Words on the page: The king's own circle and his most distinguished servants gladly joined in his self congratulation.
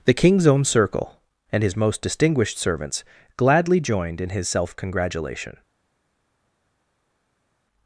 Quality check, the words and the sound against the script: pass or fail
pass